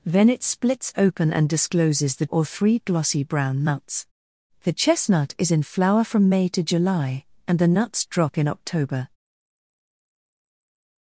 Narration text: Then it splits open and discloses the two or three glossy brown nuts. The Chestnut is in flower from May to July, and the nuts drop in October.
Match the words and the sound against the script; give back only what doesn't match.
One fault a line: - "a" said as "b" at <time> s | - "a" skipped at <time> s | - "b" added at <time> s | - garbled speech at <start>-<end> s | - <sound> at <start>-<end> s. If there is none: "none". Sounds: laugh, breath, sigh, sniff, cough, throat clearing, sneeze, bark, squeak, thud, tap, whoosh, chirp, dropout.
- "two" skipped at 2.2 s